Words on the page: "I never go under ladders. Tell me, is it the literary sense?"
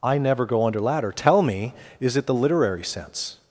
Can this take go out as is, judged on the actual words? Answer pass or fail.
fail